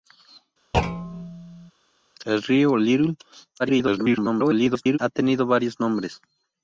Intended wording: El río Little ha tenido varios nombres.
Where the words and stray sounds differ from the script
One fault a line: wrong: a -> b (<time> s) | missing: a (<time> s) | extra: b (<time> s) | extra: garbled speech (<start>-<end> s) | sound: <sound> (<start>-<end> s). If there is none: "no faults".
sound: thud (0.7-1.7 s)
extra: garbled speech (3.6-5.0 s)